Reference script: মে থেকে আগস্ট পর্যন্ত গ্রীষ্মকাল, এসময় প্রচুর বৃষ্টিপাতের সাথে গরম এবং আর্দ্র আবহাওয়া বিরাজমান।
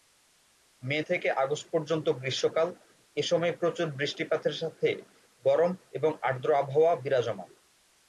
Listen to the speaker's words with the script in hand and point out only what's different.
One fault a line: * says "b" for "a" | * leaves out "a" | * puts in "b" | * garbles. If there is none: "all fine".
all fine